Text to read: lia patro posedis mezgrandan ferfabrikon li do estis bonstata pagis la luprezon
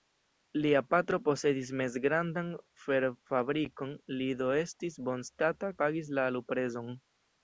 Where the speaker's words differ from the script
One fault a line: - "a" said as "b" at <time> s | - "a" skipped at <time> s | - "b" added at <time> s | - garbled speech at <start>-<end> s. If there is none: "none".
none